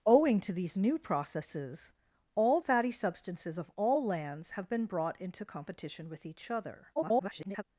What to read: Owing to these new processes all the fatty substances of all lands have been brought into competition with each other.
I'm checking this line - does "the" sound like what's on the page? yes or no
no